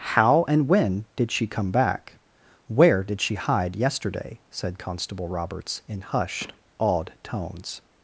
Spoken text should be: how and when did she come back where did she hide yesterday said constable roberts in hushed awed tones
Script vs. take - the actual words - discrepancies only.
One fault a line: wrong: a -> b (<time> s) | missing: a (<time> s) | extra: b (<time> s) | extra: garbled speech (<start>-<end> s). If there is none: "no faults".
no faults